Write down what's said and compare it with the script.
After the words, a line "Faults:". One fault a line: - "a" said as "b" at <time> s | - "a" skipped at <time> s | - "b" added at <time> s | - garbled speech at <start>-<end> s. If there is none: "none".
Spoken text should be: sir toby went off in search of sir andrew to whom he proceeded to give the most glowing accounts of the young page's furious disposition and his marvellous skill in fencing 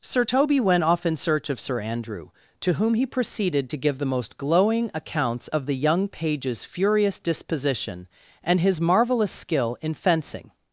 sir toby went off in search of sir andrew to whom he proceeded to give the most glowing accounts of the young page's furious disposition and his marvellous skill in fencing
Faults:
none